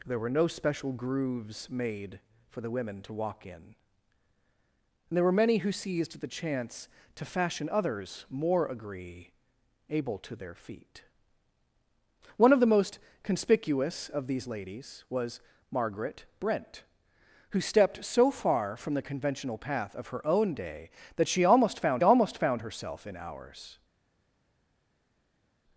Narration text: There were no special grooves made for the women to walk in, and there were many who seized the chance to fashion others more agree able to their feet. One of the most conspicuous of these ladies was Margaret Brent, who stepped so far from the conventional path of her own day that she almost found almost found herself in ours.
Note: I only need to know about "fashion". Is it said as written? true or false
true